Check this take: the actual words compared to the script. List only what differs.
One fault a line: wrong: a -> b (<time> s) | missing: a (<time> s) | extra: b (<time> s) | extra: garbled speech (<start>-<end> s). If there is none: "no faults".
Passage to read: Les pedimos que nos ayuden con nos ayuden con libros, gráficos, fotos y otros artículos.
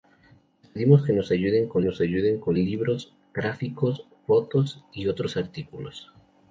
no faults